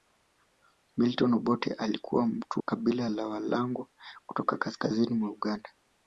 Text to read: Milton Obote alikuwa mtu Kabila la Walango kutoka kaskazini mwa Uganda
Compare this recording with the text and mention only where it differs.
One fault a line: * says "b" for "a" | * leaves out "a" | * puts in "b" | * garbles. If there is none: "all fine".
all fine